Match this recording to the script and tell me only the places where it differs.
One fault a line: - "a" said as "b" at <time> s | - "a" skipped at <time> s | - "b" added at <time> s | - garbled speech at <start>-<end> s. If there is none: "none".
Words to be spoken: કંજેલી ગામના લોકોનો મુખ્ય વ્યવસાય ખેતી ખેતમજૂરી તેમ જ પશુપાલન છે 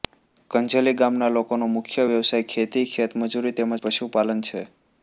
none